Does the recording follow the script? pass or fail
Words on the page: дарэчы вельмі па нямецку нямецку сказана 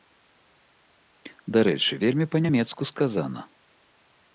fail